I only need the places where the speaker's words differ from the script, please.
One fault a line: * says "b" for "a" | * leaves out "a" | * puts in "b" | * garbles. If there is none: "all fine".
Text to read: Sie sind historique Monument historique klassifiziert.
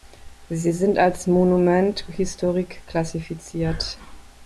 * says "als" for "historique"